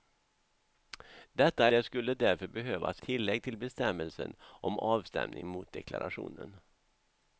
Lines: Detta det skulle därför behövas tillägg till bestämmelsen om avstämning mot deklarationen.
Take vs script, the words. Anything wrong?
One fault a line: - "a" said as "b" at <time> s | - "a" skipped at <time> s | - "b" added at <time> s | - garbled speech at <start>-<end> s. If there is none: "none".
none